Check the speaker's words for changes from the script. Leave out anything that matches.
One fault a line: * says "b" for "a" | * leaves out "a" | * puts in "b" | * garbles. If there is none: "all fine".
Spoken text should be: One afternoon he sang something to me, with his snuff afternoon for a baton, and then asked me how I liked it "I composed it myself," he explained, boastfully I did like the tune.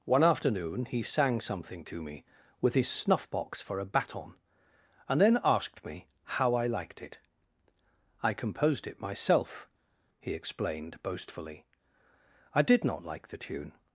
* says "box" for "afternoon"
* puts in "not"